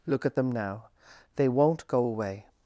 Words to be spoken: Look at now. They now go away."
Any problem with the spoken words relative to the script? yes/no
yes